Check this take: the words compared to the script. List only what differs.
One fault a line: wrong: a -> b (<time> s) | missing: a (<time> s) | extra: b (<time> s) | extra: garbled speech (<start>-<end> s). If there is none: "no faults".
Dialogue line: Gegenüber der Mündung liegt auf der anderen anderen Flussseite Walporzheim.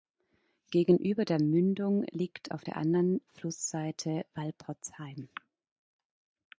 missing: anderen (3.2 s)